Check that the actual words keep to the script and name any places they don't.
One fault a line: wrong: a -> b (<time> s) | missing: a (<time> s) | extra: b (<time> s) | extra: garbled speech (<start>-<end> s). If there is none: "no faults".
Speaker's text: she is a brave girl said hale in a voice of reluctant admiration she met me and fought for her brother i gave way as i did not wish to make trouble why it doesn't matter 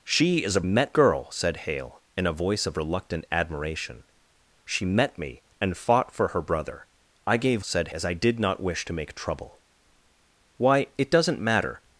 wrong: brave -> met (0.6 s)
wrong: way -> said (7.6 s)